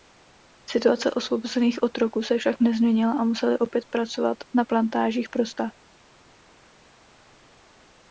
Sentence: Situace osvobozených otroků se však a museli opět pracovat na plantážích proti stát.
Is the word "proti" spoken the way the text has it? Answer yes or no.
no